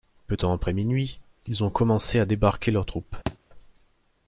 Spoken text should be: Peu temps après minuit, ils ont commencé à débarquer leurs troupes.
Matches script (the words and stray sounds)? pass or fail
fail